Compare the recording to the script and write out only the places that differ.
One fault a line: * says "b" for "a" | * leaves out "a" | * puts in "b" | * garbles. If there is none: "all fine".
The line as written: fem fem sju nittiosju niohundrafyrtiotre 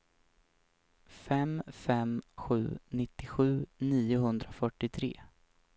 all fine